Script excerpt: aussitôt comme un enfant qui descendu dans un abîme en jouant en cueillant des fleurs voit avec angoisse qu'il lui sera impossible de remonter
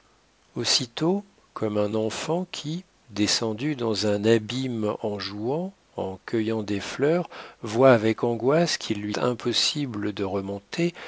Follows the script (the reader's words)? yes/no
no